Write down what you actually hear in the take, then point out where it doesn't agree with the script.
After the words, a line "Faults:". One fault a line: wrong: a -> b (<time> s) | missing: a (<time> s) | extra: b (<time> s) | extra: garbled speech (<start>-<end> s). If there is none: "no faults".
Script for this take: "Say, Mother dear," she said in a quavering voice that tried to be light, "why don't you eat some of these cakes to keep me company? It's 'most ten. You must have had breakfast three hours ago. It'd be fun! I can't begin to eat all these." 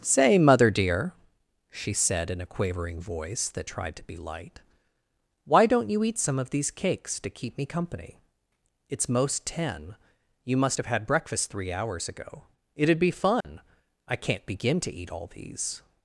"Say, Mother dear," she said in a quavering voice that tried to be light, "why don't you eat some of these cakes to keep me company? It's 'most ten. You must have had breakfast three hours ago. It'd be fun! I can't begin to eat all these."
Faults:
no faults